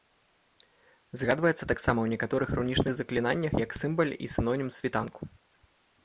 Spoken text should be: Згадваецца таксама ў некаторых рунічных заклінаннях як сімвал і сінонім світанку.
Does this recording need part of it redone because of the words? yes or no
no